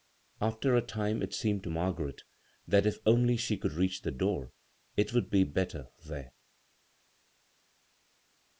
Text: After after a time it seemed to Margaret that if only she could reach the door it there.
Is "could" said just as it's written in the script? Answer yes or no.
yes